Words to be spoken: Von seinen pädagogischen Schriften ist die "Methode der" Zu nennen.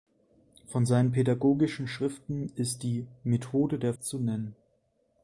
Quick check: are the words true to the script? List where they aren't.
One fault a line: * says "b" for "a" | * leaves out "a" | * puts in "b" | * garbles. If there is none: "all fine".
all fine